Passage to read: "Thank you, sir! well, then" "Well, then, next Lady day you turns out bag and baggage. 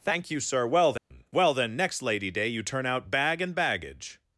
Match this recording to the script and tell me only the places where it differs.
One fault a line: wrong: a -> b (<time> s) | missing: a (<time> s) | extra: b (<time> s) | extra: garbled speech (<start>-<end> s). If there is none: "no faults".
wrong: turns -> turn (2.6 s)